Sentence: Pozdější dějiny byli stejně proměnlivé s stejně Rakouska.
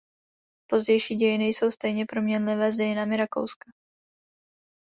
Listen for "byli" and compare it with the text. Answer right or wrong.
wrong